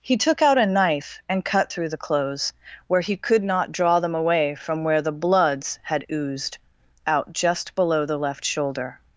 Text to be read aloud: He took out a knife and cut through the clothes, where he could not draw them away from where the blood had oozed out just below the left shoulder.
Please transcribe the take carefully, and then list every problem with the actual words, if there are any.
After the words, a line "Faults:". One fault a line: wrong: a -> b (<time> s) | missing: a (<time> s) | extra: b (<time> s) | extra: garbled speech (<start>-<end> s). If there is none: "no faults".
He took out a knife and cut through the clothes, where he could not draw them away from where the bloods had oozed out just below the left shoulder.
Faults:
wrong: blood -> bloods (5.1 s)